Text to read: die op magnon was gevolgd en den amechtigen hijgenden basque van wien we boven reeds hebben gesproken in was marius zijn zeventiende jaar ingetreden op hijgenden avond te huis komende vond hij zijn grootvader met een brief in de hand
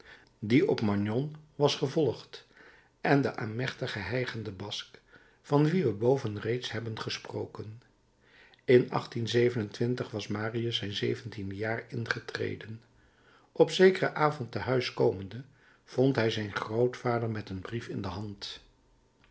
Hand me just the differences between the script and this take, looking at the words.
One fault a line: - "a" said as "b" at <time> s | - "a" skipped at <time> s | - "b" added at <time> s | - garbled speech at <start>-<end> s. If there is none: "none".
- "hijgenden" said as "zekeren" at 13.7 s